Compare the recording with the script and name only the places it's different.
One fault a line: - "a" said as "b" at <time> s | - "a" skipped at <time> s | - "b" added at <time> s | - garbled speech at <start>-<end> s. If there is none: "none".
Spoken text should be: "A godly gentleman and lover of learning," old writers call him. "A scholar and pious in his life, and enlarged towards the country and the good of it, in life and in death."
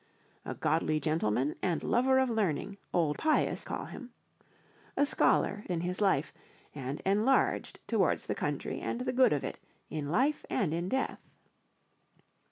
- "writers" said as "pious" at 3.2 s
- "and pious" skipped at 5.6 s